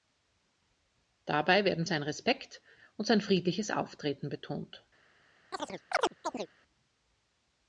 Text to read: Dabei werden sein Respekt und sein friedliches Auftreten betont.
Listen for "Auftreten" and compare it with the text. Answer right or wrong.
right